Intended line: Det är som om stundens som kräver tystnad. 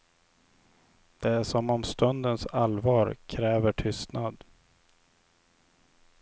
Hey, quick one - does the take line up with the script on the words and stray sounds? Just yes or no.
no